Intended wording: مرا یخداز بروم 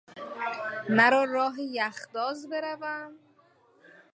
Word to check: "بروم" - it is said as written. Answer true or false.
true